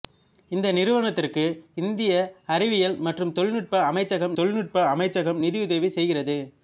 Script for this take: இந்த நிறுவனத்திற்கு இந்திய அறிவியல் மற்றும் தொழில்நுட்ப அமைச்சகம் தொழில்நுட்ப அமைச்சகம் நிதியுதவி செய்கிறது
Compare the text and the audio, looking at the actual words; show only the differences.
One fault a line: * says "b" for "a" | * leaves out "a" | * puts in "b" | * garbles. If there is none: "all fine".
all fine